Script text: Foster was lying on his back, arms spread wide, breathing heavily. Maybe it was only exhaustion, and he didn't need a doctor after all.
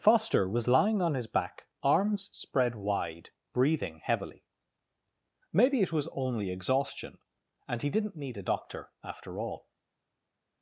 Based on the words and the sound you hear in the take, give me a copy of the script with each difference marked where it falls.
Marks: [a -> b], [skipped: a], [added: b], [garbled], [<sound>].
Foster was lying on his back, arms spread wide, breathing heavily. Maybe it was only exhaustion, and he didn't need a doctor after all.